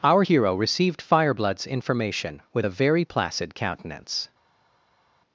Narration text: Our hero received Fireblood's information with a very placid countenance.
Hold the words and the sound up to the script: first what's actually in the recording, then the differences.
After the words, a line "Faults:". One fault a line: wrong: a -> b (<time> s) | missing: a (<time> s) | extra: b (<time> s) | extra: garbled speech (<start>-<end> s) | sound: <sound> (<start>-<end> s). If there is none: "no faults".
Our hero received Fireblood's information with a very placid countenance.
Faults:
no faults